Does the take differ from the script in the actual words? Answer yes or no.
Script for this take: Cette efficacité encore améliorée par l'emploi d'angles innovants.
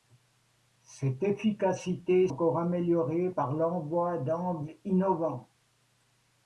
no